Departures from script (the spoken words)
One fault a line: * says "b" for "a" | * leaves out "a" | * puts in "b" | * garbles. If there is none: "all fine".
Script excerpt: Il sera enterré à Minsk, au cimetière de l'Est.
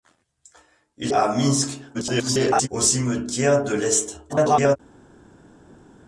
* leaves out "sera enterré"
* garbles
* garbles